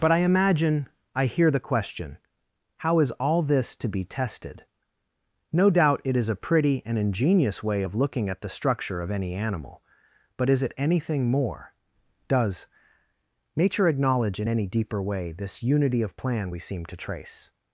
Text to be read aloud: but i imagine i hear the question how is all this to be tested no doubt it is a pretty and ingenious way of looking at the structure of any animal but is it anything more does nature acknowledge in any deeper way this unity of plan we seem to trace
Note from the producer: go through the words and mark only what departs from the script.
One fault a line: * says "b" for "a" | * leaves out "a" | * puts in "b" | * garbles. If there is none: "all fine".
all fine